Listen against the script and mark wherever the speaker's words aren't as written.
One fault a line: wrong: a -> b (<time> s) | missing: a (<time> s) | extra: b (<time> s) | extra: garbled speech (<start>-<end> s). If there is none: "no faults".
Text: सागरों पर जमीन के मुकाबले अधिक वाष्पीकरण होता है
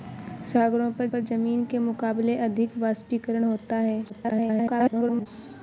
extra: पर (1.1 s)
extra: garbled speech (4.1-5.3 s)